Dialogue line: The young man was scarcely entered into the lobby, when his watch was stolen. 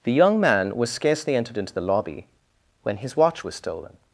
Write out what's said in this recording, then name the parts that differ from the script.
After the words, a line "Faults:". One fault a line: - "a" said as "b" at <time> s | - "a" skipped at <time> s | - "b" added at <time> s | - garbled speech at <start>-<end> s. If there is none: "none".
The young man was scarcely entered into the lobby, when his watch was stolen.
Faults:
none